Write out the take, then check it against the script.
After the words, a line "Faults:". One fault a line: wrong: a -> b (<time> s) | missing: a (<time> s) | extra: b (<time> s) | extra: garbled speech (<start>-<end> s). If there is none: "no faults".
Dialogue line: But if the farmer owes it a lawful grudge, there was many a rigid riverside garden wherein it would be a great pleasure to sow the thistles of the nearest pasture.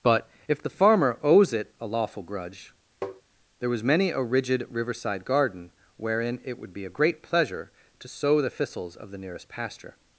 But if the farmer owes it a lawful grudge, there was many a rigid riverside garden wherein it would be a great pleasure to sow the thistles of the nearest pasture.
Faults:
no faults